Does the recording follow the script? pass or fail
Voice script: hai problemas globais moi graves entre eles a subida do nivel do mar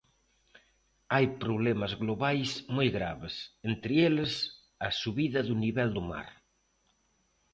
pass